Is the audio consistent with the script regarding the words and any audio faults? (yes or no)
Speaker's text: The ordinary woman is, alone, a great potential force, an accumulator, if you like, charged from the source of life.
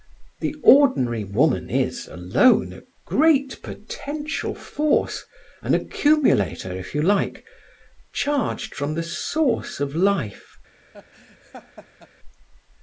no